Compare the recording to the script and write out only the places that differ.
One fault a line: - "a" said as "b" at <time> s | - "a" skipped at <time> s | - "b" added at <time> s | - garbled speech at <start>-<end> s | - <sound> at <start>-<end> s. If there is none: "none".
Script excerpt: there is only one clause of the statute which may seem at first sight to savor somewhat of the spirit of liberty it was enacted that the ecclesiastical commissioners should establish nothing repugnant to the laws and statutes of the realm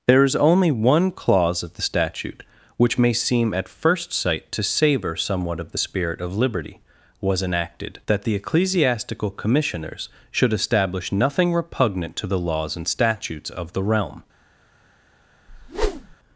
- "it" skipped at 6.8 s
- whoosh at 15.5-16.2 s